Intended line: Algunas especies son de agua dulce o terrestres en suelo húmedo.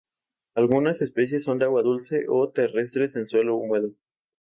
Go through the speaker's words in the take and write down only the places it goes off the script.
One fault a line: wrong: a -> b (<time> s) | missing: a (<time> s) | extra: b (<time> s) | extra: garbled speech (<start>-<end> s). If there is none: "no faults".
no faults